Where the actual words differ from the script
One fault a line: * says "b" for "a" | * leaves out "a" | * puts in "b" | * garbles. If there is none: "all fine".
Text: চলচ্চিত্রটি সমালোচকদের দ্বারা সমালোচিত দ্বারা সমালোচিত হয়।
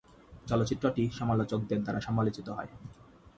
* leaves out "দ্বারা সমালোচিত"